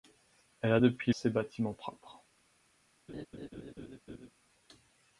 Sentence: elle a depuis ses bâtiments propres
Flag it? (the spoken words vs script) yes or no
no